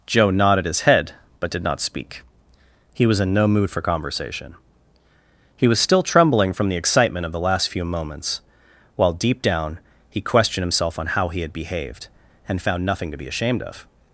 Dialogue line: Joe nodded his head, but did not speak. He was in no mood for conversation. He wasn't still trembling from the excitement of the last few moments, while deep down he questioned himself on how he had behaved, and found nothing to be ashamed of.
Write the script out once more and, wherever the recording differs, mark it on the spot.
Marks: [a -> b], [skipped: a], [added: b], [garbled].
Joe nodded his head, but did not speak. He was in no mood for conversation. He [wasn't -> was] still trembling from the excitement of the last few moments, while deep down he questioned himself on how he had behaved, and found nothing to be ashamed of.